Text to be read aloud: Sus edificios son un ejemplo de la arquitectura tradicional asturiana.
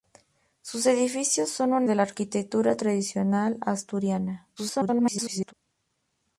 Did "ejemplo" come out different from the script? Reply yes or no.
yes